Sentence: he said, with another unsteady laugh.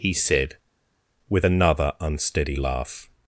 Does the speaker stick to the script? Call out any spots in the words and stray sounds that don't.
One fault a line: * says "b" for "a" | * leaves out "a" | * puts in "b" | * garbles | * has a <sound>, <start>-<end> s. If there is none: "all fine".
all fine